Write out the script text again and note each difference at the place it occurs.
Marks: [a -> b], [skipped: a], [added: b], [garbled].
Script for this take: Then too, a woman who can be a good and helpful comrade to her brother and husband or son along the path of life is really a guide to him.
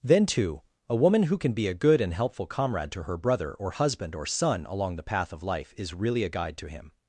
Then too, a woman who can be a good and helpful comrade to her brother [and -> or] husband or son along the path of life is really a guide to him.